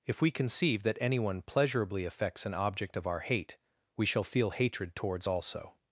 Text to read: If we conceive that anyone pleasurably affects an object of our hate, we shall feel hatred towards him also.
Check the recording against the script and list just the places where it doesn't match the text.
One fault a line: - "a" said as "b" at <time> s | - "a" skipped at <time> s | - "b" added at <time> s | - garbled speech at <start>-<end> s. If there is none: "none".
- "him" skipped at 5.3 s